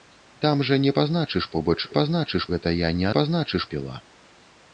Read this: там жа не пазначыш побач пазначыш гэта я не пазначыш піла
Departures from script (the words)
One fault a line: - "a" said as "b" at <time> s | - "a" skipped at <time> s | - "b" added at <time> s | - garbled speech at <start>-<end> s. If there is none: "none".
none